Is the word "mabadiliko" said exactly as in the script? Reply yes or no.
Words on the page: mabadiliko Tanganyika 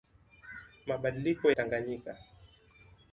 yes